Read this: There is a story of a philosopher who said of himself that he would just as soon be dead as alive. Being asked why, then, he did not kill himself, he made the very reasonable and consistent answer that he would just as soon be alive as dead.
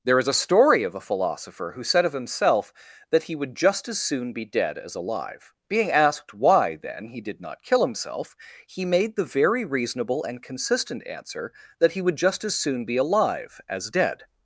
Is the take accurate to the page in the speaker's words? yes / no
yes